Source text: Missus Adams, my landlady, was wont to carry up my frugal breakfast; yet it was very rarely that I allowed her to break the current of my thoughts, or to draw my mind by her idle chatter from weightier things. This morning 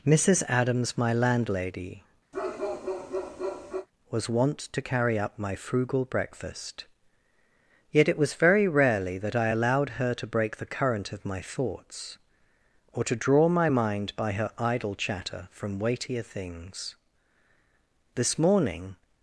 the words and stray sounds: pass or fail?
fail